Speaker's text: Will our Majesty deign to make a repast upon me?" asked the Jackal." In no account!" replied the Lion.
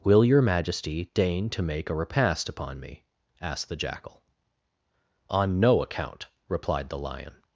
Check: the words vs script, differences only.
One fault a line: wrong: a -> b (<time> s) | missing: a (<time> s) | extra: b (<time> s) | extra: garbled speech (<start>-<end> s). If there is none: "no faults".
wrong: our -> your (0.2 s)
wrong: In -> On (5.3 s)